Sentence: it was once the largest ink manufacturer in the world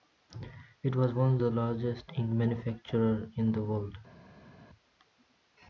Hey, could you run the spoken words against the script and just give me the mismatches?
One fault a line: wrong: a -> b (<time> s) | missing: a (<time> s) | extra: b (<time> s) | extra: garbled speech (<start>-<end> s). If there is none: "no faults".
no faults